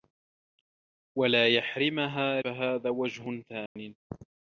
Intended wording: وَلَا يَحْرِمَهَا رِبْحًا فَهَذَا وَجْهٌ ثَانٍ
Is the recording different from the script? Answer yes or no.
yes